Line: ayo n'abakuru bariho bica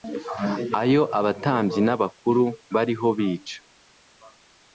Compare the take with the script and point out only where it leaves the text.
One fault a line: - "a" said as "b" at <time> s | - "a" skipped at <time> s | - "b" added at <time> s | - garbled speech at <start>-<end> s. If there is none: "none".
- "abatambyi" added at 1.2 s